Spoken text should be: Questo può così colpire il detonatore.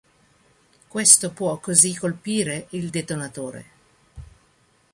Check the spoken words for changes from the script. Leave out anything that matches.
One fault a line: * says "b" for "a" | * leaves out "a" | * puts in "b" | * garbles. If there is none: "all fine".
all fine